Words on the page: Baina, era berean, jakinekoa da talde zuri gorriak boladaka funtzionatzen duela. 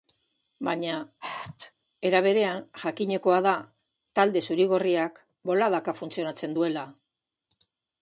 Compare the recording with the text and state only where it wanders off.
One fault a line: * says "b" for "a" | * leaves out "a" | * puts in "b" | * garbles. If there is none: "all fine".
all fine